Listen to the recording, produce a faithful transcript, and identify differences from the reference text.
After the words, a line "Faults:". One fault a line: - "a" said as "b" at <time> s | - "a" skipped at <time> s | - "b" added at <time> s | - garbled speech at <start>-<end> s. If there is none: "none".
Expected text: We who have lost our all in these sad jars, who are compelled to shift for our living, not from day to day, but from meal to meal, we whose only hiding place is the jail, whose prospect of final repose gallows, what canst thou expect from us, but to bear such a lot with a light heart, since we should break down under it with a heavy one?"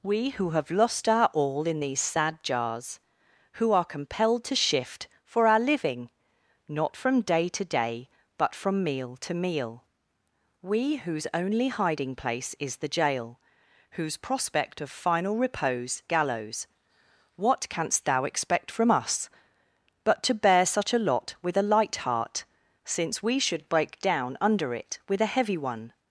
We who have lost our all in these sad jars, who are compelled to shift for our living, not from day to day, but from meal to meal, we whose only hiding place is the jail, whose prospect of final repose gallows, what canst thou expect from us, but to bear such a lot with a light heart, since we should break down under it with a heavy one?"
Faults:
none